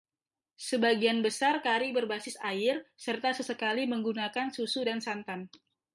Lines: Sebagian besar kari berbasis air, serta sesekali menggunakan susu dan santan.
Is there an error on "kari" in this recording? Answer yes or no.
no